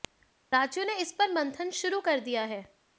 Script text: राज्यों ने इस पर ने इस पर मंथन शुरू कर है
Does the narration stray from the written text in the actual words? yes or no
yes